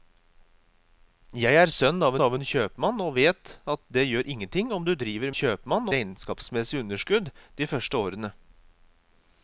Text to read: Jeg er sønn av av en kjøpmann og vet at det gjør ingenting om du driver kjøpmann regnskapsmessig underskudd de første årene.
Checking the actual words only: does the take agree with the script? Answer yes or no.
yes